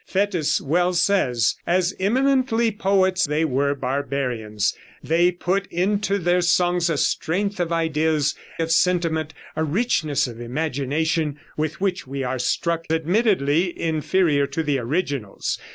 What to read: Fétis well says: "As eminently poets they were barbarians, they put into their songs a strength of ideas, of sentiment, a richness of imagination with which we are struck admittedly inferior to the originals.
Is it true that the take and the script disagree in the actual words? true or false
false